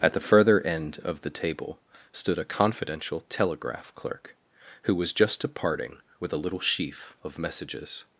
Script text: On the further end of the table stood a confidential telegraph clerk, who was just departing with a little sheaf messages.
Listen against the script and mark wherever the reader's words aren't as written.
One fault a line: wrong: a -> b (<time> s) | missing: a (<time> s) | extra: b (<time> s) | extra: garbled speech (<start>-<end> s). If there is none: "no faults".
wrong: On -> At (0.0 s)
extra: of (7.2 s)